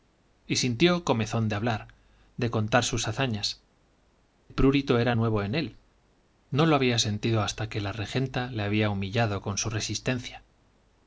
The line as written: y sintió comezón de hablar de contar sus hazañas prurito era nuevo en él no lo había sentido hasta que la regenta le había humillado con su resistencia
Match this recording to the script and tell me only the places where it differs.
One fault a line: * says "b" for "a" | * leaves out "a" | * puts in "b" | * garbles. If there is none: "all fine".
all fine